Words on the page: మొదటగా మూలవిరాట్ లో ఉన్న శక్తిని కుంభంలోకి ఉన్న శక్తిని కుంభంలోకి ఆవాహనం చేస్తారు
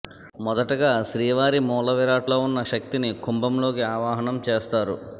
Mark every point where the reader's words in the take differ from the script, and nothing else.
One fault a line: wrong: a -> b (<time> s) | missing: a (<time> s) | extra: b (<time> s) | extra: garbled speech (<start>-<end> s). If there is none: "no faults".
extra: శ్రీవారి (1.1 s)
missing: ఉన్న శక్తిని కుంభంలోకి (3.8 s)